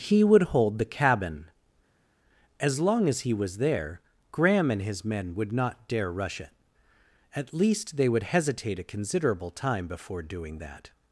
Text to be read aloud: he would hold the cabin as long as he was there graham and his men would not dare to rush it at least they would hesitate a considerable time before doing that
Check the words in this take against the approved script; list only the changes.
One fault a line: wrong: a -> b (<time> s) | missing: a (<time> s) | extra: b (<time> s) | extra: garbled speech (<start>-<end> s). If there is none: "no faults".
missing: to (6.1 s)